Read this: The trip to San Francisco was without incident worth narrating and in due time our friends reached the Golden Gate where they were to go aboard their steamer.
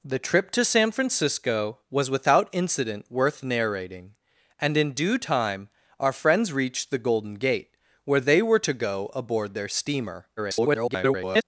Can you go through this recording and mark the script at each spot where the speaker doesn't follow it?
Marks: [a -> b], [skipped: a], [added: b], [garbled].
The trip to San Francisco was without incident worth narrating and in due time our friends reached the Golden Gate where they were to go aboard their steamer. [garbled]